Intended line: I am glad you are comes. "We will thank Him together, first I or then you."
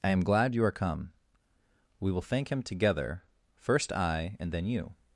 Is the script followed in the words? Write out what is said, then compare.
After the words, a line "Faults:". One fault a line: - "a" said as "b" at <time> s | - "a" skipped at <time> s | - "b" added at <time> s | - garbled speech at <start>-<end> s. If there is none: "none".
I am glad you are come. "We will thank Him together, first I and then you."
Faults:
- "comes" said as "come" at 0.7 s
- "or" said as "and" at 4.4 s